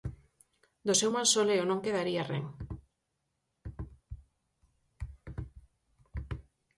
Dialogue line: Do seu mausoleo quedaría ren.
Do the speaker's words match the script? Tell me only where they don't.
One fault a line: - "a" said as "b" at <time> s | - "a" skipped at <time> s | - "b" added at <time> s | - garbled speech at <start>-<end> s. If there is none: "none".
- "non" added at 1.7 s